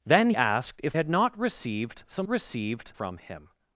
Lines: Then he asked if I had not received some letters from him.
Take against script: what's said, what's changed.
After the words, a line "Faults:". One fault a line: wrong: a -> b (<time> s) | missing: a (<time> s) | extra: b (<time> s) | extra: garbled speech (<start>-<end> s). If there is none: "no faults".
Then asked if had not received some received from him.
Faults:
missing: he (0.3 s)
missing: I (1.0 s)
wrong: letters -> received (2.3 s)